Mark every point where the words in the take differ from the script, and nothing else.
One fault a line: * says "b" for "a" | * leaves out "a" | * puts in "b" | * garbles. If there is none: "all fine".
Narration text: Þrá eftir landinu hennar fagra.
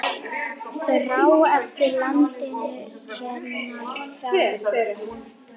all fine